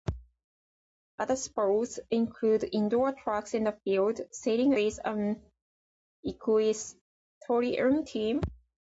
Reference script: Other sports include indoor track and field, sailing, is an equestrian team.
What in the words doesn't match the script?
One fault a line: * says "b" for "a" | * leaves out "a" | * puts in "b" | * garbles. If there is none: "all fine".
all fine